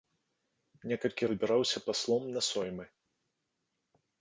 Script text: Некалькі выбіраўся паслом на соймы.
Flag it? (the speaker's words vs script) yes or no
no